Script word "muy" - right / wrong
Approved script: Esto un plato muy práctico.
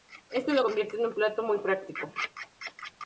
right